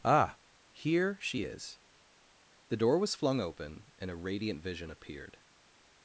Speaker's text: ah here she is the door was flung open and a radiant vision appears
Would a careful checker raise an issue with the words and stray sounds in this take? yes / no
yes